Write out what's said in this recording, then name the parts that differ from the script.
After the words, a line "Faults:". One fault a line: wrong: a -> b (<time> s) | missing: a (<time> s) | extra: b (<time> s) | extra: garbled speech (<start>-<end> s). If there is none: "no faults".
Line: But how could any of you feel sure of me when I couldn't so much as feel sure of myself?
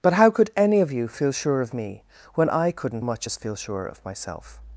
But how could any of you feel sure of me when I couldn't much as feel sure of myself?
Faults:
missing: so (3.0 s)